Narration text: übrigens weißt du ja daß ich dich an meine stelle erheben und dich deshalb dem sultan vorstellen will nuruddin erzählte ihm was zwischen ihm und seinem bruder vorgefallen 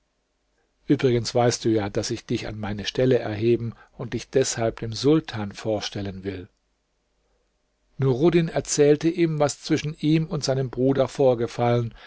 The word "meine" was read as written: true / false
true